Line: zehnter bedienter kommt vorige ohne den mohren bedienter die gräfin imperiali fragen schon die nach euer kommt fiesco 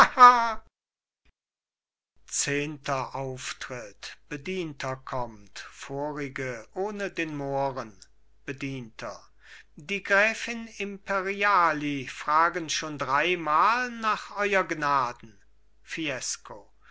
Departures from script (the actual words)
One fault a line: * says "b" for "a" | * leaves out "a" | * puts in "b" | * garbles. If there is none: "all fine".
* puts in "auftritt"
* says "dreimal" for "die"
* says "gnaden" for "kommt"